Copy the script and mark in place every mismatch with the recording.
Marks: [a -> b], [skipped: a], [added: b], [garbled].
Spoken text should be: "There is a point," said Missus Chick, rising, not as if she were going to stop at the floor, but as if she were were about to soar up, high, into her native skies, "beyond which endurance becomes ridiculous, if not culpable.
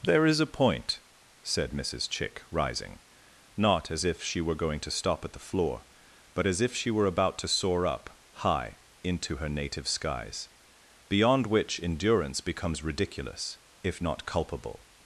"There is a point," said Missus Chick, rising, not as if she were going to stop at the floor, but as if she were [skipped: were] about to soar up, high, into her native skies, "beyond which endurance becomes ridiculous, if not culpable.